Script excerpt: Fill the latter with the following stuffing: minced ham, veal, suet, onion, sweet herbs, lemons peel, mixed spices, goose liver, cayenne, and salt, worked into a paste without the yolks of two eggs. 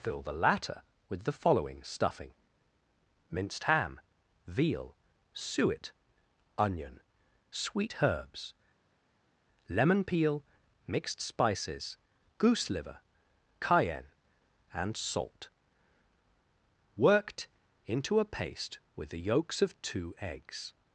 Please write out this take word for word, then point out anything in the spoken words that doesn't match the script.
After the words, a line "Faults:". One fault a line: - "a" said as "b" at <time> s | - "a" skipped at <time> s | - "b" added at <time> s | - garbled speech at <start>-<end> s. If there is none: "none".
Fill the latter with the following stuffing: minced ham, veal, suet, onion, sweet herbs, lemon peel, mixed spices, goose liver, cayenne, and salt, worked into a paste with the yolks of two eggs.
Faults:
- "lemons" said as "lemon" at 9.7 s
- "without" said as "with" at 18.9 s